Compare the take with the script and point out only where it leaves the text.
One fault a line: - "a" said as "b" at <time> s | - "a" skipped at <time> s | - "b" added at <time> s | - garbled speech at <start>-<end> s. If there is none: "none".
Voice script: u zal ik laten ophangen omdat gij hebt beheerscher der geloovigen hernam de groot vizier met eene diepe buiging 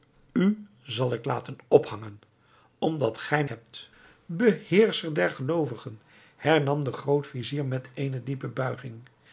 none